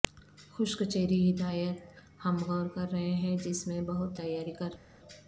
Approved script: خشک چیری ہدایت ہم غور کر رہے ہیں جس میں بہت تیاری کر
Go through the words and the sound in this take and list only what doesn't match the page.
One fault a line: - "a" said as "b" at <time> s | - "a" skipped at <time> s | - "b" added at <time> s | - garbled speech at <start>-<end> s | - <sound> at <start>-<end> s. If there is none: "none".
none